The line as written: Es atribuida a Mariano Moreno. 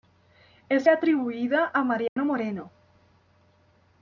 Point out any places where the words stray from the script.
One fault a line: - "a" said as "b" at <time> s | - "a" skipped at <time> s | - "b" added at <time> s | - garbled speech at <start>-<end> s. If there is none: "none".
none